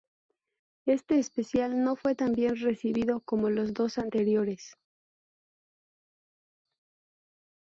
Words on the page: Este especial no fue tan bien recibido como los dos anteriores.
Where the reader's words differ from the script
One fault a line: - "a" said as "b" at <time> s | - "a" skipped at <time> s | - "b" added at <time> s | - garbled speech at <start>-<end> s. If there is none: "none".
none